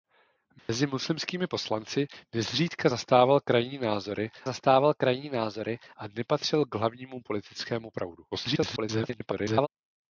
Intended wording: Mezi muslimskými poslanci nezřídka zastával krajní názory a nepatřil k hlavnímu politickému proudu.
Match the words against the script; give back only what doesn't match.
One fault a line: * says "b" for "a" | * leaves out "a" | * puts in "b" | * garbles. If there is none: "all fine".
* puts in "zastával krajní názory"
* garbles